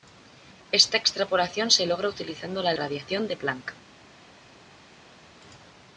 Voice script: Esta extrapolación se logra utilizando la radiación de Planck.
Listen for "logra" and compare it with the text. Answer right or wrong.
right